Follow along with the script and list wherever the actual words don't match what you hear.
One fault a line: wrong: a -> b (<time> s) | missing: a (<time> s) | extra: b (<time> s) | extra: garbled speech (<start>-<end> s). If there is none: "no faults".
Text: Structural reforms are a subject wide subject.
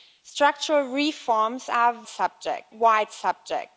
no faults